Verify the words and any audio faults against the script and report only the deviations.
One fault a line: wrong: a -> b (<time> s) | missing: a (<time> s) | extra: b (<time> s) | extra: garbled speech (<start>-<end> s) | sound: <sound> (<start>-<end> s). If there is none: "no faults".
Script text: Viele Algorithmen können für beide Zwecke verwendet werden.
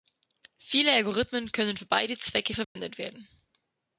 sound: dropout (2.6-2.8 s)